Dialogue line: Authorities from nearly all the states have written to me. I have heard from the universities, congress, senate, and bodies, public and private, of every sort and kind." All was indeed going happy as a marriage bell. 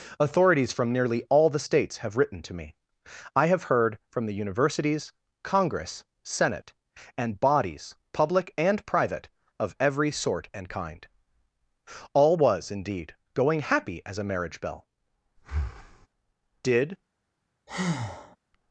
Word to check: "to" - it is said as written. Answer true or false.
true